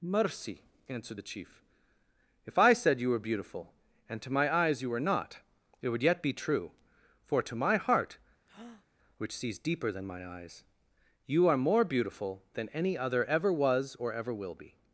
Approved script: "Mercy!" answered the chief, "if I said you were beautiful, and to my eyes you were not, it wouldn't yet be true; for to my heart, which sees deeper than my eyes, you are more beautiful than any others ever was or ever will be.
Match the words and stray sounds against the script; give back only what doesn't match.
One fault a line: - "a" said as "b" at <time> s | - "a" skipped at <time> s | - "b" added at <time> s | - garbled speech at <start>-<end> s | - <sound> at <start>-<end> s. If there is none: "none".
- "wouldn't" said as "would" at 5.9 s
- breath at 8.5-8.9 s
- "others" said as "other" at 13.0 s